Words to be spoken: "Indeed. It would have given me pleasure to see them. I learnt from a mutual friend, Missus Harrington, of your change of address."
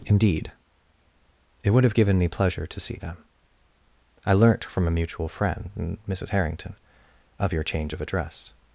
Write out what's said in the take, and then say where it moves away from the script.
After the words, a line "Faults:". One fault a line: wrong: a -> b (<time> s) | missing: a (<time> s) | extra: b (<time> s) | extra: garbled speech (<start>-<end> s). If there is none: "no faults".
"Indeed. It would have given me pleasure to see them. I learnt from a mutual friend, Missus Harrington, of your change of address."
Faults:
no faults